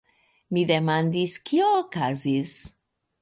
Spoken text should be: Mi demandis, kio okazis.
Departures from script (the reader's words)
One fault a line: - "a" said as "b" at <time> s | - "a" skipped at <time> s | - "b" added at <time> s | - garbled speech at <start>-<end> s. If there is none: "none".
none